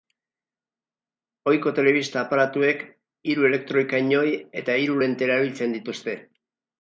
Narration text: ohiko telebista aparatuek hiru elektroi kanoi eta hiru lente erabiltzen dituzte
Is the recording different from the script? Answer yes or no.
no